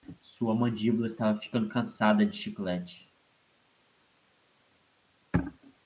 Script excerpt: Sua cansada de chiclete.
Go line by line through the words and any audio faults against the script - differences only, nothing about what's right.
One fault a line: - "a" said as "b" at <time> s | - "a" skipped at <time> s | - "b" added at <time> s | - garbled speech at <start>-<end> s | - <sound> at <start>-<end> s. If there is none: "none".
- "mandíbula estava ficando" added at 0.6 s